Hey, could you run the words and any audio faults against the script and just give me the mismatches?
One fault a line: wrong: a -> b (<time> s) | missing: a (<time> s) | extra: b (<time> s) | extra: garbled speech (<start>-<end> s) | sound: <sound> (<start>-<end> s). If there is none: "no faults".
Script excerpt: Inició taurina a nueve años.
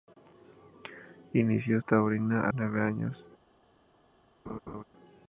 sound: laugh (4.5-4.8 s)